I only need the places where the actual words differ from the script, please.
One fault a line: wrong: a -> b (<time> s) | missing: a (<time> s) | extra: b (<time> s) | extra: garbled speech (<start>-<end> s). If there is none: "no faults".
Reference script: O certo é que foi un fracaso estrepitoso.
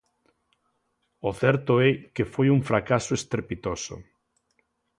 no faults